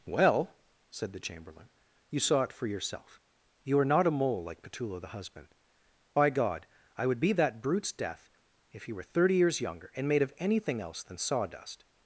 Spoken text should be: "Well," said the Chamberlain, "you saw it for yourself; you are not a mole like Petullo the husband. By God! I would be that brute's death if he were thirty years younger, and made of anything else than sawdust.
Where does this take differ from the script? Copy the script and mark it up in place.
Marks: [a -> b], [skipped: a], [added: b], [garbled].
"Well," said the Chamberlain, "you saw it for yourself; you are not a mole like Petullo the husband. By God! I would be that brute's death if he were thirty years younger, and made of anything else than sawdust.